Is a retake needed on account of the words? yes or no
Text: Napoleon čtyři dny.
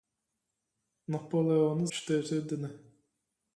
no